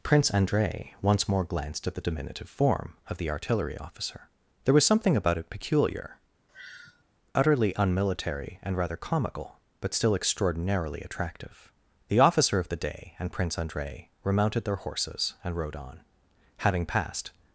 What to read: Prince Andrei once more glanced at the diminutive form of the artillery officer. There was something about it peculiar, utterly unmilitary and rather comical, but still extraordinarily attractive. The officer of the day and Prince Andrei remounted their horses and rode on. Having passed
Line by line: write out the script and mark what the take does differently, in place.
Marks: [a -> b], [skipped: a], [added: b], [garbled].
Prince Andrei once more glanced at the diminutive form of the artillery officer. There was something about it peculiar, utterly unmilitary and rather comical, but still extraordinarily attractive. The officer of the day and Prince Andrei remounted their horses and rode on. Having passed